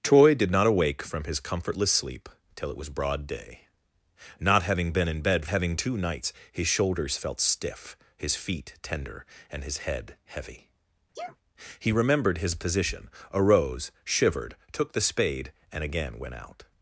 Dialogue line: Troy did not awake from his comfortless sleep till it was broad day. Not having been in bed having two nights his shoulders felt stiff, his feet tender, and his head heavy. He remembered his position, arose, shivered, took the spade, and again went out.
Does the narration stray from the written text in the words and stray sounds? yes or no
yes